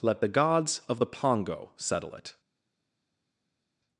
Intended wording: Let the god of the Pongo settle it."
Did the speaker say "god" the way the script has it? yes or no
no